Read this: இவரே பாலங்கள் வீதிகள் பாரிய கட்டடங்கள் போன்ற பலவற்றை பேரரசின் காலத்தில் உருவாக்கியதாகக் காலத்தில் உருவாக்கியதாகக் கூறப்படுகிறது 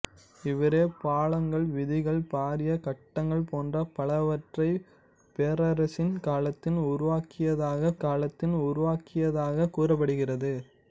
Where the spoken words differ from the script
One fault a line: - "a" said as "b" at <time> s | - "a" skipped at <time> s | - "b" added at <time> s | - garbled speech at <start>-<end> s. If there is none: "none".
none